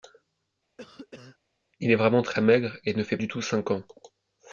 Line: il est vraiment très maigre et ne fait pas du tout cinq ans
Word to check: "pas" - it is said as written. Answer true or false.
false